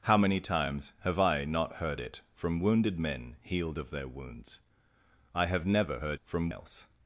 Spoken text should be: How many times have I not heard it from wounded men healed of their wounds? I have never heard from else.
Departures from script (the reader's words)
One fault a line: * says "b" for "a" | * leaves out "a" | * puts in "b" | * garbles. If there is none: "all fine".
all fine